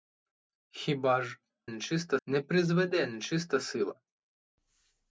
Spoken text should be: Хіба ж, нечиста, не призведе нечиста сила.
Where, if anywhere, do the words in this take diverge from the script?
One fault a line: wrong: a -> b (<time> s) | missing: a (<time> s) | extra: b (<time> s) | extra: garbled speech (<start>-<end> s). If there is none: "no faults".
no faults